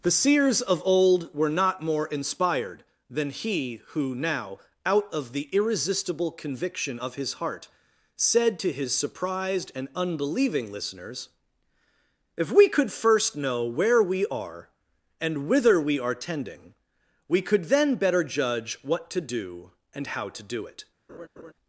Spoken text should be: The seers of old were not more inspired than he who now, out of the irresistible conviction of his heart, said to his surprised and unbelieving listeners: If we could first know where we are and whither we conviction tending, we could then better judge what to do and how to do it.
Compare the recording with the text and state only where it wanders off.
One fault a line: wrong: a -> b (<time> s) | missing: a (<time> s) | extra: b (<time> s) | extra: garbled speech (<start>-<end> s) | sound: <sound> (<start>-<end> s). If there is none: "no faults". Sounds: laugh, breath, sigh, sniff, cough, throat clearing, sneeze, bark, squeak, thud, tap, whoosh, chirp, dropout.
wrong: conviction -> are (16.0 s)
sound: laugh (21.1-21.5 s)